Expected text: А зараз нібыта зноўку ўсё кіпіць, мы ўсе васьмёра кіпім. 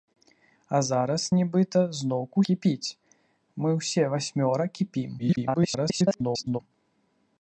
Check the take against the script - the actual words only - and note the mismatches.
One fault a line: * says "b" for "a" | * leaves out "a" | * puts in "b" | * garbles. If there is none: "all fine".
* leaves out "ўсё"
* garbles